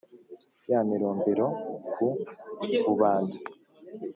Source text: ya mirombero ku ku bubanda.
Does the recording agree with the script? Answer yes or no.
no